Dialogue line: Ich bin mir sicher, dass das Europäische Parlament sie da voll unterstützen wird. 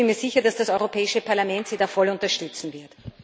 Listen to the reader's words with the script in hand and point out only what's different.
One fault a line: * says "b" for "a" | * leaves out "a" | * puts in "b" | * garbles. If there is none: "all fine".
all fine